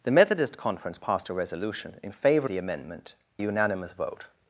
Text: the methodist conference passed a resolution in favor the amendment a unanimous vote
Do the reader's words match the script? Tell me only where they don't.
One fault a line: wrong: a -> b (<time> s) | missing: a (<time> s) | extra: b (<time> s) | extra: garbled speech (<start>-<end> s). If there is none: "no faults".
no faults